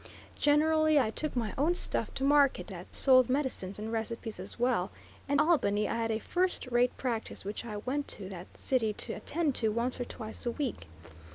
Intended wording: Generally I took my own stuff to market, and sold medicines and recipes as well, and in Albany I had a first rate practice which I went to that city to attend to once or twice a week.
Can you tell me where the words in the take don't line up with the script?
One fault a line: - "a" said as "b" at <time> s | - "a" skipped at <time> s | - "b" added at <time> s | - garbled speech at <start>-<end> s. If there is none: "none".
- "and" said as "that" at 2.7 s
- "in" skipped at 5.4 s